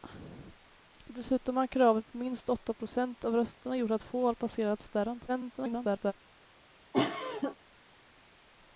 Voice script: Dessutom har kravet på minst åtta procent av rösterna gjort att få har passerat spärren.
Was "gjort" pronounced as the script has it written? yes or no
yes